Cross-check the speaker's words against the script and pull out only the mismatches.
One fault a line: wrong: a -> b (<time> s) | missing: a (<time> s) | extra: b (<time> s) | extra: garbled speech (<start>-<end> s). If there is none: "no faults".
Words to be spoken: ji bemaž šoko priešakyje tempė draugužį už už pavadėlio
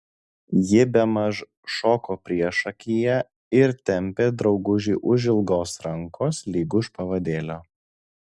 extra: ir (3.6 s)
extra: ilgos rankos lyg (5.3 s)